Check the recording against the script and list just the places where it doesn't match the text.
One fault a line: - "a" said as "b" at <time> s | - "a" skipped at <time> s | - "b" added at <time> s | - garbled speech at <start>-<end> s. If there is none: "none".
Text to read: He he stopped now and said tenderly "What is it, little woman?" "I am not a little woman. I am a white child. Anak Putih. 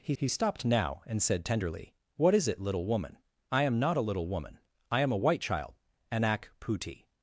none